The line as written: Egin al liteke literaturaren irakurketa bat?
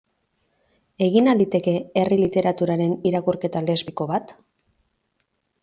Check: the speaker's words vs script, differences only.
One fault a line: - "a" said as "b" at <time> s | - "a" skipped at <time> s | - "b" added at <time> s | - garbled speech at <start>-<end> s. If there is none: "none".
- "herri" added at 2.0 s
- "lesbiko" added at 3.7 s